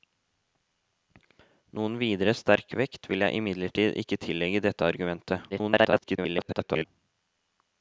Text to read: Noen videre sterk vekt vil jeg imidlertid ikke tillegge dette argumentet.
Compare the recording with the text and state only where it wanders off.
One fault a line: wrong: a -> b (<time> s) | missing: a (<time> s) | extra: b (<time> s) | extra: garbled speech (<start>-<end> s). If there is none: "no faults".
extra: garbled speech (5.5-6.9 s)